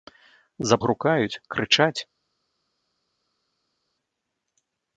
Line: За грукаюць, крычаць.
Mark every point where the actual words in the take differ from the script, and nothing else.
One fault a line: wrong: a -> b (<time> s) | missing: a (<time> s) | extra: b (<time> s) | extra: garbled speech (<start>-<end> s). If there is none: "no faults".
no faults